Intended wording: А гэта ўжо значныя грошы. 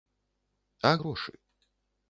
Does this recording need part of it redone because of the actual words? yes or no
yes